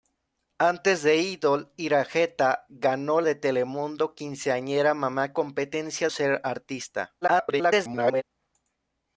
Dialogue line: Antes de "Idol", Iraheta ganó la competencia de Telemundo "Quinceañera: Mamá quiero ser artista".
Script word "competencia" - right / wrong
wrong